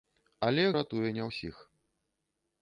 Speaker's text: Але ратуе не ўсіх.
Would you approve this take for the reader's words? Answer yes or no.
yes